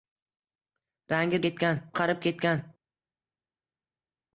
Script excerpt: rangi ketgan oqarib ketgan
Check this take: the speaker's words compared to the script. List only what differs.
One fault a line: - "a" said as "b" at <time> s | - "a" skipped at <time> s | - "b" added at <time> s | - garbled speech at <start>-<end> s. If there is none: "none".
none